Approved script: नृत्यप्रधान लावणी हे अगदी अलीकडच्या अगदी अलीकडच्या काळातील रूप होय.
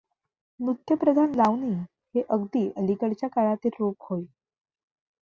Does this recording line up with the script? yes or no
no